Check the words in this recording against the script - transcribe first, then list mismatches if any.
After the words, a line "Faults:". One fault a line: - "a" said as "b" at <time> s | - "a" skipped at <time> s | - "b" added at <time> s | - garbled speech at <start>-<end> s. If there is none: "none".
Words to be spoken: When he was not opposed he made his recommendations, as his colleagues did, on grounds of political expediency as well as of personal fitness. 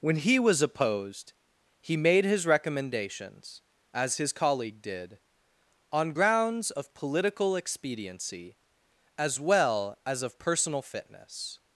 When he was opposed he made his recommendations, as his colleague did, on grounds of political expediency as well as of personal fitness.
Faults:
- "not" skipped at 0.6 s
- "colleagues" said as "colleague" at 4.3 s